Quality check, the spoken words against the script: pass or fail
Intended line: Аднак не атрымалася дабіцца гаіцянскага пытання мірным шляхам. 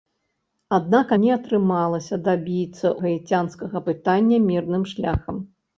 pass